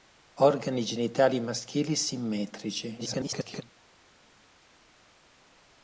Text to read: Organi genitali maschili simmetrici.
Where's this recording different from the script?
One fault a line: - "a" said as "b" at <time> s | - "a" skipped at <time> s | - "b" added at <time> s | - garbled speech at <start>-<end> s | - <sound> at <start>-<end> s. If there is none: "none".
- garbled speech at 3.0-3.6 s